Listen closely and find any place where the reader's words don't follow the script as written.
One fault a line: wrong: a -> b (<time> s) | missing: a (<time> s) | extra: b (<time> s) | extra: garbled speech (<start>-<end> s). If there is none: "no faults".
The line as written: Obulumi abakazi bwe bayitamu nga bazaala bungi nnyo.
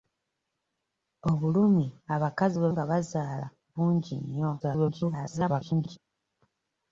missing: bayitamu (2.7 s)
extra: garbled speech (4.6-6.0 s)